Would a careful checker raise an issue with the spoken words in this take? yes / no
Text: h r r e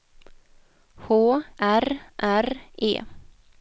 no